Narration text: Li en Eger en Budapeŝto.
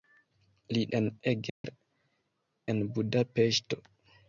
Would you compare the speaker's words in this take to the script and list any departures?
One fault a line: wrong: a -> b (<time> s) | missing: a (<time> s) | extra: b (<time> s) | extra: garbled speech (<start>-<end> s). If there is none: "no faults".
no faults